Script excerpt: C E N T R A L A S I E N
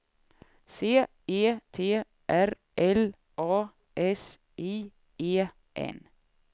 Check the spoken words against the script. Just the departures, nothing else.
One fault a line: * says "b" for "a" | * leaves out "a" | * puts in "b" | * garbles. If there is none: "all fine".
* leaves out "N"
* leaves out "A"